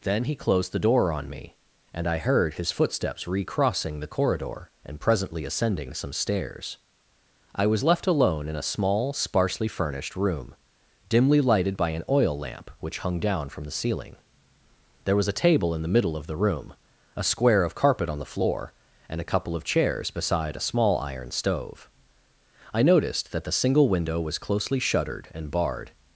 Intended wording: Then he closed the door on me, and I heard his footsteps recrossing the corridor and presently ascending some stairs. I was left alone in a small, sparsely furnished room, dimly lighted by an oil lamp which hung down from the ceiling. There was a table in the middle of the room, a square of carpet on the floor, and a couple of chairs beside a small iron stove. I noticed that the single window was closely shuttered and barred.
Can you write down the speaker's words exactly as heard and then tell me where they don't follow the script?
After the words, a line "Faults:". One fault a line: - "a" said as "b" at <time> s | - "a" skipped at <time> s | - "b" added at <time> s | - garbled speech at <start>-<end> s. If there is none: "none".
Then he closed the door on me, and I heard his footsteps recrossing the corridor and presently ascending some stairs. I was left alone in a small, sparsely furnished room, dimly lighted by an oil lamp which hung down from the ceiling. There was a table in the middle of the room, a square of carpet on the floor, and a couple of chairs beside a small iron stove. I noticed that the single window was closely shuttered and barred.
Faults:
none